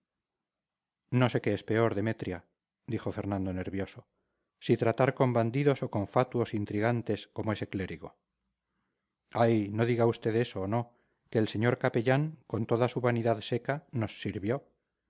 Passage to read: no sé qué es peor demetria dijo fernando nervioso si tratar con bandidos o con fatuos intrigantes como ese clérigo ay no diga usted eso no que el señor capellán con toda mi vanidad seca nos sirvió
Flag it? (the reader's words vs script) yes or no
yes